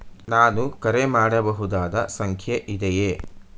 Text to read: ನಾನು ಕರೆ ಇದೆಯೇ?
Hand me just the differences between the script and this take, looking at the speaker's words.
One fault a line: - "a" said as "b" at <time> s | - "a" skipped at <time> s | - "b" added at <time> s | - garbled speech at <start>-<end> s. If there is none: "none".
- "ಮಾಡಬಹುದಾದ ಸಂಖ್ಯೆ" added at 1.1 s